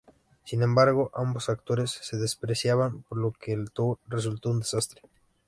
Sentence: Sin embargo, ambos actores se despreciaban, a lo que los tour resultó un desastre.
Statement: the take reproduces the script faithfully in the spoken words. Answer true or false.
false